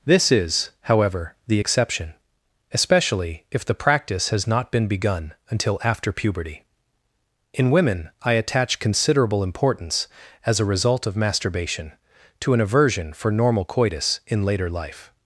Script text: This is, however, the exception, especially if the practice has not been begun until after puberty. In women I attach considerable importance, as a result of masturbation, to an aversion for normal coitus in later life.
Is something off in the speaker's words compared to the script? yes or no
no